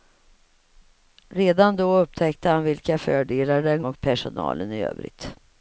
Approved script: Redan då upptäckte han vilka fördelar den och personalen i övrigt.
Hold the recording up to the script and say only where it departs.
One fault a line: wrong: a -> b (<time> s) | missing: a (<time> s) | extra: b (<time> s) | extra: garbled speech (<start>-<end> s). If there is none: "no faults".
no faults